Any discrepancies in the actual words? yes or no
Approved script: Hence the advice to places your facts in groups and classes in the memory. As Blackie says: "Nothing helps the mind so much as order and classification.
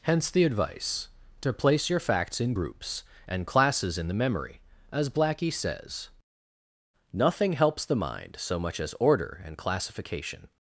yes